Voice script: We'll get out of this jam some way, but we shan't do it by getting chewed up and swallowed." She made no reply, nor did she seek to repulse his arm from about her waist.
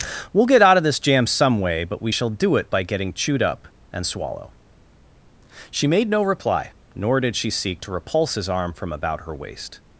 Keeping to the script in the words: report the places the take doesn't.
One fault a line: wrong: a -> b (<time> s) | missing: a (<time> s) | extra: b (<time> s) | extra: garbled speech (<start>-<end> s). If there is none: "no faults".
wrong: shan't -> shall (2.1 s)
wrong: swallowed -> swallow (4.0 s)